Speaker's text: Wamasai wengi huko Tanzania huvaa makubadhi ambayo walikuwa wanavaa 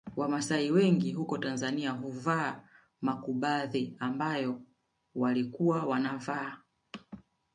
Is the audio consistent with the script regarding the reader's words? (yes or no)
yes